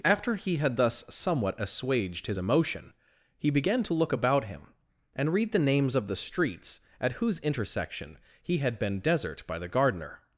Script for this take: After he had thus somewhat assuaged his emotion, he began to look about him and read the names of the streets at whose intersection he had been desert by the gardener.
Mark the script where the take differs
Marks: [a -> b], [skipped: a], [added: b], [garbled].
After he had thus somewhat assuaged his emotion, he began to look about him and read the names of the streets at whose intersection he had been desert by the gardener.